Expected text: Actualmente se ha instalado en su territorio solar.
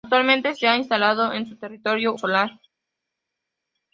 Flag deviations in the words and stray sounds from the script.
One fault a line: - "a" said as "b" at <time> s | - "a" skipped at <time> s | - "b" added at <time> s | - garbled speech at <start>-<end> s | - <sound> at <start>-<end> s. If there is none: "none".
none